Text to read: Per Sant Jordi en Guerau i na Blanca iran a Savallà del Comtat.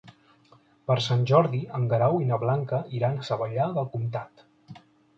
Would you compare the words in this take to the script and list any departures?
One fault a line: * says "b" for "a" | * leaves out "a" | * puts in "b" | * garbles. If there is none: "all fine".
all fine